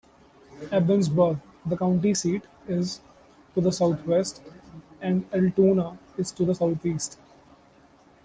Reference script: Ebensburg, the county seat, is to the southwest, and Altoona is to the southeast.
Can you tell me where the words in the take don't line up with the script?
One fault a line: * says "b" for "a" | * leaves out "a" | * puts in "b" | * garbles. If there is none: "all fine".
all fine